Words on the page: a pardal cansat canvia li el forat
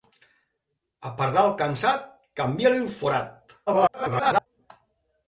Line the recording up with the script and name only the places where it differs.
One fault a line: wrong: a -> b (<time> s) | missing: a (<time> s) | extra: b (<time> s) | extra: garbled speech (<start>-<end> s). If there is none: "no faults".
extra: garbled speech (3.7-4.5 s)